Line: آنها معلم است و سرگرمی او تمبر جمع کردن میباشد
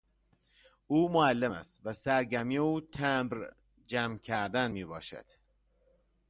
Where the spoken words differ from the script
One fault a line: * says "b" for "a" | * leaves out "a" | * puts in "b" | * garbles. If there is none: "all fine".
* says "او" for "آنها"